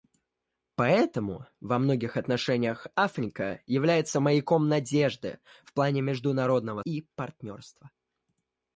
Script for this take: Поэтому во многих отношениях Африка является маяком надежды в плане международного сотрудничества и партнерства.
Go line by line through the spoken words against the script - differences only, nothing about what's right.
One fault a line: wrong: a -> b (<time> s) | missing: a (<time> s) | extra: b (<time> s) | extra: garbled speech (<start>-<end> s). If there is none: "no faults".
missing: сотрудничества (6.8 s)